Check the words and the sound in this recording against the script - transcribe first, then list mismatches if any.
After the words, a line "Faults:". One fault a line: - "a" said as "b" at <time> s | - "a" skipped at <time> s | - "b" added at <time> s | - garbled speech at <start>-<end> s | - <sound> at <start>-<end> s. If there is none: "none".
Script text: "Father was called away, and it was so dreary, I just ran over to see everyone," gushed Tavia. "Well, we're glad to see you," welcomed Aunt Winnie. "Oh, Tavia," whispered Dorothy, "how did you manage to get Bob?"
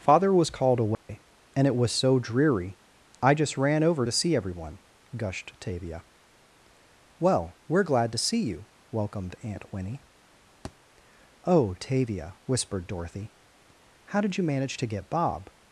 "Father was called away, and it was so dreary, I just ran over to see everyone," gushed Tavia. "Well, we're glad to see you," welcomed Aunt Winnie. "Oh, Tavia," whispered Dorothy, "how did you manage to get Bob?"
Faults:
- dropout at 0.9-1.1 s
- thud at 10.6-10.8 s